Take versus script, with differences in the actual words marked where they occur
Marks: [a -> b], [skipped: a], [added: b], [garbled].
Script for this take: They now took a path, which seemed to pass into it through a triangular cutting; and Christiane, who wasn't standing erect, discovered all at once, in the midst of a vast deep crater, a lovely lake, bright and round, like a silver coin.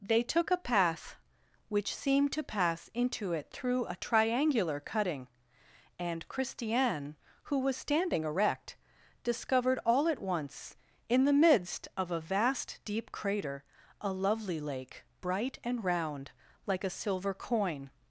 They [skipped: now] took a path, which seemed to pass into it through a triangular cutting; and Christiane, who [wasn't -> was] standing erect, discovered all at once, in the midst of a vast deep crater, a lovely lake, bright and round, like a silver coin.